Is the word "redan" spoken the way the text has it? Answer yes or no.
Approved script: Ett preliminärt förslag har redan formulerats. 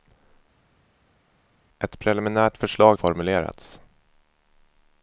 no